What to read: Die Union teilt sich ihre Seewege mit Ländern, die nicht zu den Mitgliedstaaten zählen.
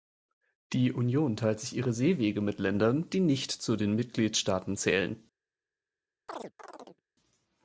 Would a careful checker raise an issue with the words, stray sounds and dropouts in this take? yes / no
yes